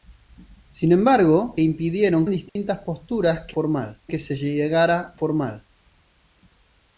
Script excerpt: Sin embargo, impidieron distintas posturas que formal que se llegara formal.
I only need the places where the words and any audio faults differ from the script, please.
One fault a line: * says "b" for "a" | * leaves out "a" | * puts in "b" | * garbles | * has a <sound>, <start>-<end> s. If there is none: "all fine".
* has a dropout, 2.5-2.6 s